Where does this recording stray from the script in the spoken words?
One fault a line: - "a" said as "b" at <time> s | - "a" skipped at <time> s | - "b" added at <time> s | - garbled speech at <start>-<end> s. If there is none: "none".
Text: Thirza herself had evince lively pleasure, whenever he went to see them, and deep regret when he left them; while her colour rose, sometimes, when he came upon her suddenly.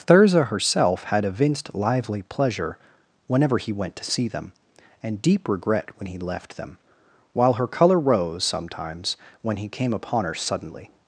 - "evince" said as "evinced" at 1.2 s